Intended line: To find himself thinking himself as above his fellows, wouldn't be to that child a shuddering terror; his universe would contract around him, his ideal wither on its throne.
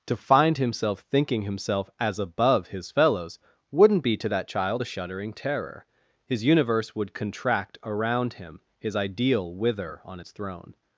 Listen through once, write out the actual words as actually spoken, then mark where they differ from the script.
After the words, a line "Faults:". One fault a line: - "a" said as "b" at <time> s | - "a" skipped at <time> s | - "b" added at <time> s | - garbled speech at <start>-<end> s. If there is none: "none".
To find himself thinking himself as above his fellows, wouldn't be to that child a shuddering terror; his universe would contract around him, his ideal wither on its throne.
Faults:
none